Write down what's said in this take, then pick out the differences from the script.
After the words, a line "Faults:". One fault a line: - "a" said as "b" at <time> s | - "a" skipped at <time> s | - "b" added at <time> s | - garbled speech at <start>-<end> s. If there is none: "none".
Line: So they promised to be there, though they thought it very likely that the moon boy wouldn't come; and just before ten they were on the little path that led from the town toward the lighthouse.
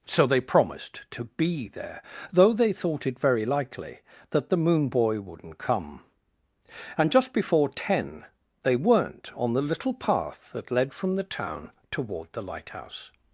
So they promised to be there, though they thought it very likely that the moon boy wouldn't come; and just before ten they weren't on the little path that led from the town toward the lighthouse.
Faults:
- "were" said as "weren't" at 8.8 s